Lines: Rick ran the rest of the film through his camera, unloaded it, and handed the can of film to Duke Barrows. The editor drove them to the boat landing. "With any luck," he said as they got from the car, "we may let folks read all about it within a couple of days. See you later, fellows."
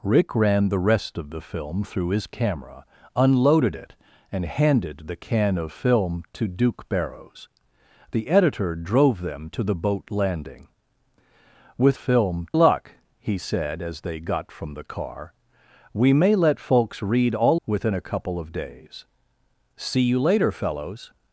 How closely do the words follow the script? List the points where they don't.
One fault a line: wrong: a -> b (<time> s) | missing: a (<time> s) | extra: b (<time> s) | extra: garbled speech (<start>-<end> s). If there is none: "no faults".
wrong: any -> film (11.9 s)
missing: about it (17.6 s)